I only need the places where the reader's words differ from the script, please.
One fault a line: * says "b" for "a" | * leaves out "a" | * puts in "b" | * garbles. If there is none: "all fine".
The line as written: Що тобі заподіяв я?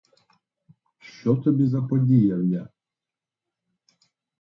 all fine